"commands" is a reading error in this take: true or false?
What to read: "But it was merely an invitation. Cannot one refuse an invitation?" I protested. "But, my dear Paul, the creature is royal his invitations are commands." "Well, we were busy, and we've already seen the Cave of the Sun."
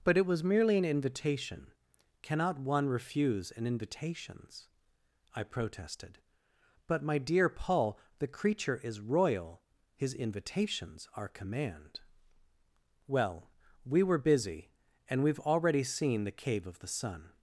true